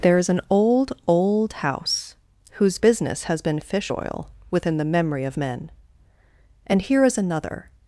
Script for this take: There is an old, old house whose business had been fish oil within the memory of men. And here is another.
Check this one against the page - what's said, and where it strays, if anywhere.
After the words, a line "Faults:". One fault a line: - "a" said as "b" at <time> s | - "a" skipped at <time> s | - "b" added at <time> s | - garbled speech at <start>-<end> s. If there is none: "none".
There is an old, old house whose business has been fish oil within the memory of men. And here is another.
Faults:
- "had" said as "has" at 3.2 s